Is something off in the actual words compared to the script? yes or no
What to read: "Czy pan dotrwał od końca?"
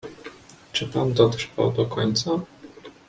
yes